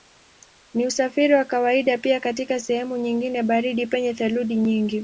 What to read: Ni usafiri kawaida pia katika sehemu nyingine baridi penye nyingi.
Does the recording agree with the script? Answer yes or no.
no